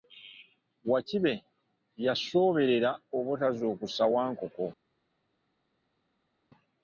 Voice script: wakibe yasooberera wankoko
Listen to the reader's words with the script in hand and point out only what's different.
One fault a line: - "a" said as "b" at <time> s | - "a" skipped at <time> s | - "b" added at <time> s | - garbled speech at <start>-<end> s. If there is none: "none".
- "obutazuukusa" added at 3.2 s